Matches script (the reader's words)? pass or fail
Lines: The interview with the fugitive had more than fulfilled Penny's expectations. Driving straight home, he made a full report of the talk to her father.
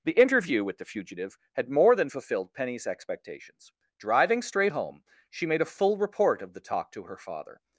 fail